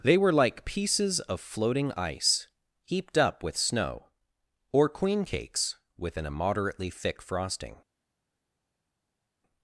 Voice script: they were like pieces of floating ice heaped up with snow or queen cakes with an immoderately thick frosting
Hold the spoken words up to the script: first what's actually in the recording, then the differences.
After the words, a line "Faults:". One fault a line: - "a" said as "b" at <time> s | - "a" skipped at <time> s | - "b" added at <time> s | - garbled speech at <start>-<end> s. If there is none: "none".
they were like pieces of floating ice heaped up with snow or queen cakes with an immoderately thick frosting
Faults:
none